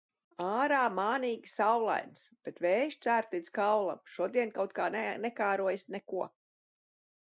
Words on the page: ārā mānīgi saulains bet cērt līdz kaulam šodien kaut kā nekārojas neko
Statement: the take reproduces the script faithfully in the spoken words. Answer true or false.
false